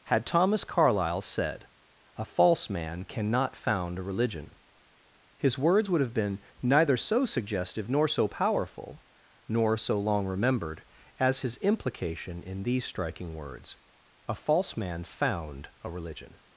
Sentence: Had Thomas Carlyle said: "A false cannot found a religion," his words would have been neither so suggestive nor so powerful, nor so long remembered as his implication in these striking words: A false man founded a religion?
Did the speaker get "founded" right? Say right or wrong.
wrong